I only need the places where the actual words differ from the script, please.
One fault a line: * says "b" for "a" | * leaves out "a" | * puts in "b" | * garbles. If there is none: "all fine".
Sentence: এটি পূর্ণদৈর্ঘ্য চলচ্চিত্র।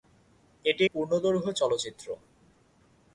all fine